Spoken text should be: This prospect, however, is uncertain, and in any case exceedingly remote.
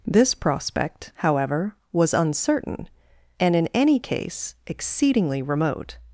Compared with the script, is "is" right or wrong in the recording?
wrong